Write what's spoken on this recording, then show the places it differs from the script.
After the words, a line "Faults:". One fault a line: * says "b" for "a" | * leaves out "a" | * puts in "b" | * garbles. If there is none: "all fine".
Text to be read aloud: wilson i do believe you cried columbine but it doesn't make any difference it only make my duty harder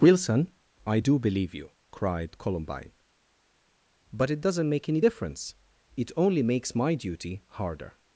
wilson i do believe you cried columbine but it doesn't make any difference it only makes my duty harder
Faults:
* says "makes" for "make"